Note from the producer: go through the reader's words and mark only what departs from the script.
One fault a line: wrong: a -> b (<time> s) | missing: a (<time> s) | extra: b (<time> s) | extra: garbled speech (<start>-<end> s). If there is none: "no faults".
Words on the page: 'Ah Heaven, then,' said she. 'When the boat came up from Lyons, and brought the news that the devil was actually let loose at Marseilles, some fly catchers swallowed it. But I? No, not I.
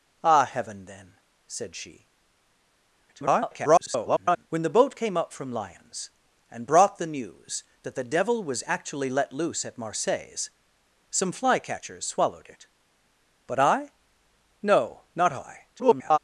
extra: garbled speech (3.1-4.5 s)
extra: garbled speech (15.7-16.2 s)